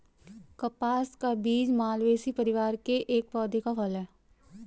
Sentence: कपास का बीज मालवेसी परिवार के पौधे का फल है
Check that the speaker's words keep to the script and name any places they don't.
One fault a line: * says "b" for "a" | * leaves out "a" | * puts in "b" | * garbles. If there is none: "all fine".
* puts in "एक"